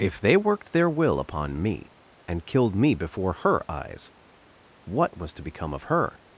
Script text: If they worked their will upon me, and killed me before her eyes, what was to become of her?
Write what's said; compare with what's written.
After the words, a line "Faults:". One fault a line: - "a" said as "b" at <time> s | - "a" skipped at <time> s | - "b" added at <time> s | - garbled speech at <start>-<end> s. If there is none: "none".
If they worked their will upon me, and killed me before her eyes, what was to become of her?
Faults:
none